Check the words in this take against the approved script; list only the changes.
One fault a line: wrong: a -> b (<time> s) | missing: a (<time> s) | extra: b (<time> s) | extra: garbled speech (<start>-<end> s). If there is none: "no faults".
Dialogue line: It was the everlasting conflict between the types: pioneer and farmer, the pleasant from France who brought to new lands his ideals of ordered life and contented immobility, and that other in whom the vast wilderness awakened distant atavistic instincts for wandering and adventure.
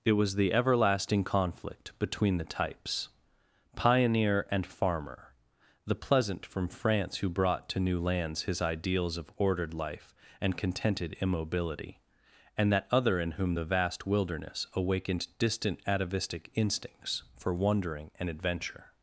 no faults